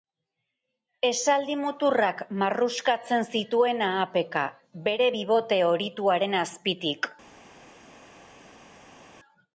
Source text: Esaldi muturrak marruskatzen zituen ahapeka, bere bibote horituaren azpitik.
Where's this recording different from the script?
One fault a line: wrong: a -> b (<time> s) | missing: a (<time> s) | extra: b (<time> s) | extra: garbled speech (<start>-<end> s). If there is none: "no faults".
no faults